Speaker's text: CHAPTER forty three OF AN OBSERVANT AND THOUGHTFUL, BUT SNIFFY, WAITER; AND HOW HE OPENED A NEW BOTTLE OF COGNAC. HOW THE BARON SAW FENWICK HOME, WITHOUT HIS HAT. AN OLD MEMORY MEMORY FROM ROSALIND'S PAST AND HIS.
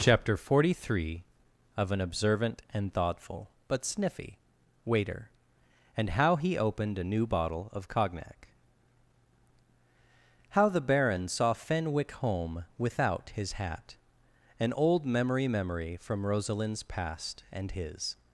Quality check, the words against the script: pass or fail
pass